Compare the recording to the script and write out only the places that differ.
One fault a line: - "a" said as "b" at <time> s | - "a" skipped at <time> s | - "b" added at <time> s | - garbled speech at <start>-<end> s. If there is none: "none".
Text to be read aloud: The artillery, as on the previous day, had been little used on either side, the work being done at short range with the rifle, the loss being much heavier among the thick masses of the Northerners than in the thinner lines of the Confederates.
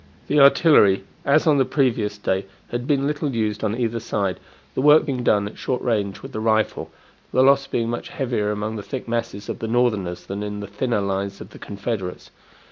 none